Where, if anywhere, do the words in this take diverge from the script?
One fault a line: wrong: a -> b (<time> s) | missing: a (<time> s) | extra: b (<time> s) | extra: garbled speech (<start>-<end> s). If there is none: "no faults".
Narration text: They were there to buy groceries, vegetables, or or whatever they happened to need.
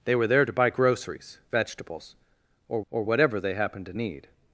no faults